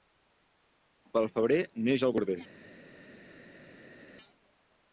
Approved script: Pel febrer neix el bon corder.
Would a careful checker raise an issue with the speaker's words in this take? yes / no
yes